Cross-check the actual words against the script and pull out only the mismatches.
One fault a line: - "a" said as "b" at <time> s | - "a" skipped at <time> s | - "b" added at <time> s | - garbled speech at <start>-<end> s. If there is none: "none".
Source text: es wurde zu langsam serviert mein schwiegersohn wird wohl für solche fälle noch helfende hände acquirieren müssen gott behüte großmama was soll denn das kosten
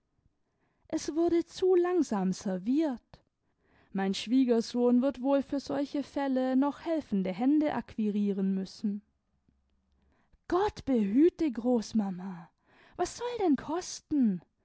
- "das" skipped at 13.6 s